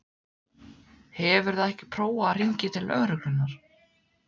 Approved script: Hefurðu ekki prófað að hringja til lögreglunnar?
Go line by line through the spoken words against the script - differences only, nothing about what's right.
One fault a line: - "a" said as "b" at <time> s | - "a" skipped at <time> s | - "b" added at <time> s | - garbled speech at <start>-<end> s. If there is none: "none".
none